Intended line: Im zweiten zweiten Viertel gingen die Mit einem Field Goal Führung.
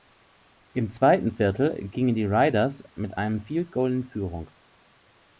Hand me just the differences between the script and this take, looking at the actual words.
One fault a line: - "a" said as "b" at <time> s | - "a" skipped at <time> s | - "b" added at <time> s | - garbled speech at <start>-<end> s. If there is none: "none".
- "zweiten" skipped at 1.3 s
- "Raiders" added at 2.2 s
- "in" added at 3.9 s